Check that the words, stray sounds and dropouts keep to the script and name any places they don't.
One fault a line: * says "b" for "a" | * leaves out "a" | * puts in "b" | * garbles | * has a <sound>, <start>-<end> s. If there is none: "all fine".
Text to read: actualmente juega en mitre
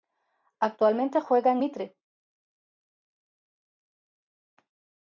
all fine